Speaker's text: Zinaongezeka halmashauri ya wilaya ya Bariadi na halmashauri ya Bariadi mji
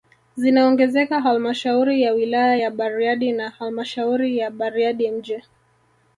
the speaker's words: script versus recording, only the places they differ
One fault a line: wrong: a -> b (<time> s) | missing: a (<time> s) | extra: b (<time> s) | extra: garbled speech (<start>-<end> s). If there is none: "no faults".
no faults